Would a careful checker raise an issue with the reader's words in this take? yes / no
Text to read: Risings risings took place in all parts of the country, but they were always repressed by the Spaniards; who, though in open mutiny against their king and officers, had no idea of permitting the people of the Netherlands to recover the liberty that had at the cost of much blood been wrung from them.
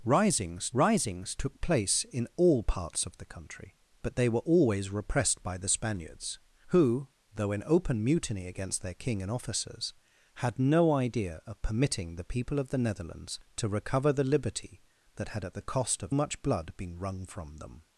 no